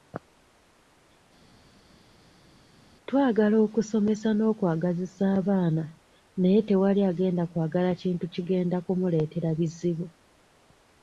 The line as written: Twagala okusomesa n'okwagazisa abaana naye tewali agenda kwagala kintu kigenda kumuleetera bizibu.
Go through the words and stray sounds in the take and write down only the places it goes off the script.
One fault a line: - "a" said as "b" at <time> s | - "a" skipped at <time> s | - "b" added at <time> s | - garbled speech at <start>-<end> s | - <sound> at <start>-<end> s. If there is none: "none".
none